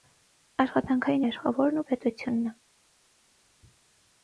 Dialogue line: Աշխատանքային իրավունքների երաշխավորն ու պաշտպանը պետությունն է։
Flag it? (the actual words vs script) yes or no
yes